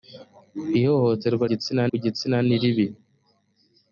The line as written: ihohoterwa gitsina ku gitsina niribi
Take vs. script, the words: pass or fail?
pass